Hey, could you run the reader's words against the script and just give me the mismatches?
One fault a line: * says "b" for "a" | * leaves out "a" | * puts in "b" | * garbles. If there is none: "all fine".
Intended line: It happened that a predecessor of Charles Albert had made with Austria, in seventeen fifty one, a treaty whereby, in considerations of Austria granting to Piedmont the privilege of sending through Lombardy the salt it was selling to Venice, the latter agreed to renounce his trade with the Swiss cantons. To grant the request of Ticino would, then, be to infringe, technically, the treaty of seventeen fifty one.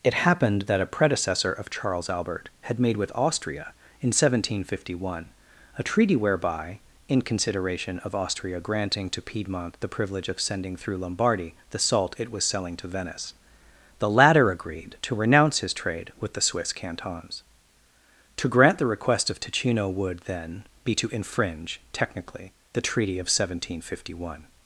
* says "consideration" for "considerations"